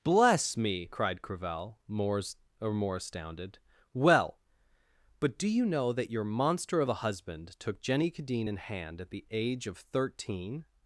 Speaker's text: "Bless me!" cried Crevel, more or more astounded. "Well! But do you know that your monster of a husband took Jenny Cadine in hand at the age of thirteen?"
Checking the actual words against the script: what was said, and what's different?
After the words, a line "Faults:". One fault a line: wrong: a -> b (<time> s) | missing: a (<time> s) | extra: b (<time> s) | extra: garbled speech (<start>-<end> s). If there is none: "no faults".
"Bless me!" cried Crevel, more or more astounded. "Well! But do you know that your monster of a husband took Jenny Cadine in hand at the age of thirteen?"
Faults:
no faults